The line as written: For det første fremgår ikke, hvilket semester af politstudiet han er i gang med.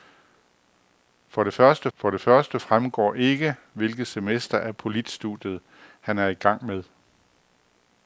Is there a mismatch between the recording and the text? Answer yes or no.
yes